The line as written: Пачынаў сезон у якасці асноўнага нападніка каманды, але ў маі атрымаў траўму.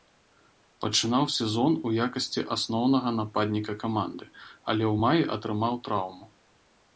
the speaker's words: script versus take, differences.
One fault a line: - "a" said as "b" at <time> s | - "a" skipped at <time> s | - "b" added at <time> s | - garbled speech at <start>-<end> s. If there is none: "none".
none